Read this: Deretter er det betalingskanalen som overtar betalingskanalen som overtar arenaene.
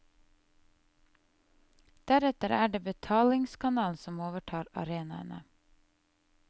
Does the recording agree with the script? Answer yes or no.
no